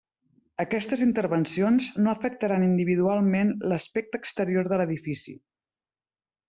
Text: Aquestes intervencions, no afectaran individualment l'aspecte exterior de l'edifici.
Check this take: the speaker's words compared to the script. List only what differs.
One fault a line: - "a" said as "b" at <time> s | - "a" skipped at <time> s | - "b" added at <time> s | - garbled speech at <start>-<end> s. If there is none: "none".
none